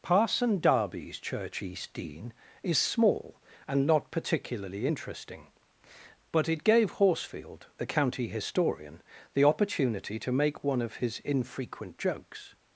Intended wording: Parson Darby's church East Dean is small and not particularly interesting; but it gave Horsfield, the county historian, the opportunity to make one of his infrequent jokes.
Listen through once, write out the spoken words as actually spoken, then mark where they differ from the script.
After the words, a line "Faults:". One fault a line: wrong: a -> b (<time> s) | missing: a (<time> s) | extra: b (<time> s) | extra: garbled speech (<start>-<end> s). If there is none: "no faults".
Parson Darby's church East Dean is small and not particularly interesting; but it gave Horsfield, the county historian, the opportunity to make one of his infrequent jokes.
Faults:
no faults